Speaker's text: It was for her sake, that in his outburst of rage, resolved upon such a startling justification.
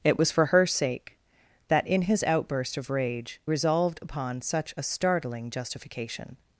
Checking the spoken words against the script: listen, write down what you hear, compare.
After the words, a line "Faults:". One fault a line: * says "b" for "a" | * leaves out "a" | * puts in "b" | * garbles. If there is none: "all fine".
It was for her sake, that in his outburst of rage, resolved upon such a startling justification.
Faults:
all fine